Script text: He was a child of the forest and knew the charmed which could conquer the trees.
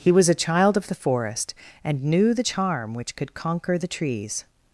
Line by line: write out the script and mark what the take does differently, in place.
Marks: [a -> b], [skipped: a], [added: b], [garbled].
He was a child of the forest and knew the [charmed -> charm] which could conquer the trees.